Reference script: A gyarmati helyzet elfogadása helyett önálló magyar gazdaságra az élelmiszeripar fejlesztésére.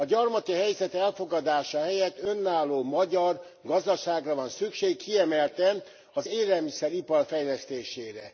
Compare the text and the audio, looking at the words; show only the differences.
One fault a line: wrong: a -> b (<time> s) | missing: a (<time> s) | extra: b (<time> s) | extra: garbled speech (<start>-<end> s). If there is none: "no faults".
extra: van szükség kiemelten (4.3 s)